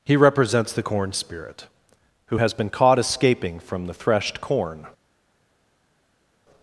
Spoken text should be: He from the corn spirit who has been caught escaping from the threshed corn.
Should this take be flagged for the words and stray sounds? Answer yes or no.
yes